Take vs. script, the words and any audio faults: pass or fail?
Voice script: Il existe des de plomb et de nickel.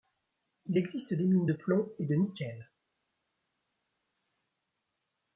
fail